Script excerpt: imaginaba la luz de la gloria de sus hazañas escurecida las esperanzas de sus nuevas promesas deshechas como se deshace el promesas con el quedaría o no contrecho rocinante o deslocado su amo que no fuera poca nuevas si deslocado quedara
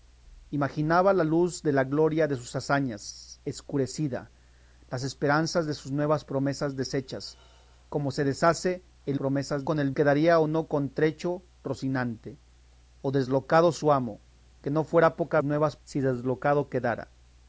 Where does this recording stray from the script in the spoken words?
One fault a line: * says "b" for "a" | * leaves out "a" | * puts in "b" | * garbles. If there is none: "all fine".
all fine